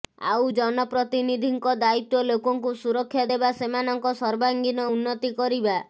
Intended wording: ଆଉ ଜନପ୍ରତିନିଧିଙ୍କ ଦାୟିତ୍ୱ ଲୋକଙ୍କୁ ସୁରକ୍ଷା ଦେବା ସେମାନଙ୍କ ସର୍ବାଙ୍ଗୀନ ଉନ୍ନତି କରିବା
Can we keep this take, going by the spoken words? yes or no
yes